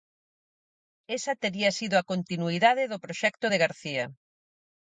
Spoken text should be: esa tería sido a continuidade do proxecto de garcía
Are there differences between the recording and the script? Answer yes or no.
no